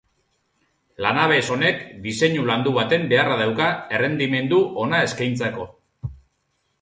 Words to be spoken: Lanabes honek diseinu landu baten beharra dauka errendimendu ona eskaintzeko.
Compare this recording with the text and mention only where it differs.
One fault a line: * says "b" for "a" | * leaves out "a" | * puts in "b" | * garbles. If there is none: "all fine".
all fine